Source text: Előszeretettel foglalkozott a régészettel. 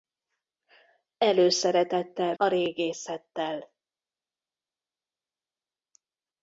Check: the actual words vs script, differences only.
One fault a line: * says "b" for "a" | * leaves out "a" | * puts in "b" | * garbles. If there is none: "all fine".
* leaves out "foglalkozott"